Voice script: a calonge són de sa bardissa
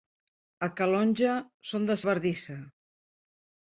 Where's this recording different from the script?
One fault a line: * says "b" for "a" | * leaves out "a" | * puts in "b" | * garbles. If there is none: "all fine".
* leaves out "sa"